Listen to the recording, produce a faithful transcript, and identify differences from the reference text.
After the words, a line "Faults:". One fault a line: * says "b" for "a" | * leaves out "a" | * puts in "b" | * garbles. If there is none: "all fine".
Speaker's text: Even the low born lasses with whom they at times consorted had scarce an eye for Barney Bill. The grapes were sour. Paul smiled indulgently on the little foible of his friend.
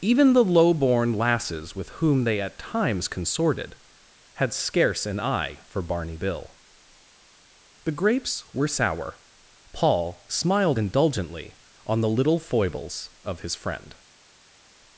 Even the low born lasses with whom they at times consorted had scarce an eye for Barney Bill. The grapes were sour. Paul smiled indulgently on the little foibles of his friend.
Faults:
* says "foibles" for "foible"